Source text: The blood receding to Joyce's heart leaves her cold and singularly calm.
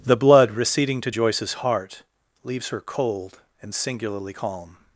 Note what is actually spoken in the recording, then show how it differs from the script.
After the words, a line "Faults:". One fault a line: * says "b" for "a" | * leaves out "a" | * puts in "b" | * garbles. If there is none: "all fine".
The blood receding to Joyce's heart leaves her cold and singularly calm.
Faults:
all fine